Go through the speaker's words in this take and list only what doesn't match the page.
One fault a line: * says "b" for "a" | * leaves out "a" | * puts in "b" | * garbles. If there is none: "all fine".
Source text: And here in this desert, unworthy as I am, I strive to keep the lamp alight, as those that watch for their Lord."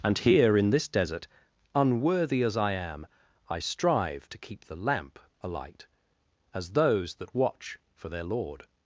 all fine